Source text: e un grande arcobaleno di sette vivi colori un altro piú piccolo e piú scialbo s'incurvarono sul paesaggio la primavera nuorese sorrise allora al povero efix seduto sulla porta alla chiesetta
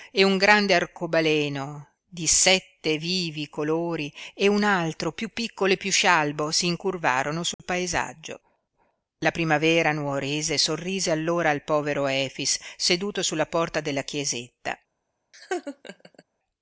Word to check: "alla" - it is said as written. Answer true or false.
false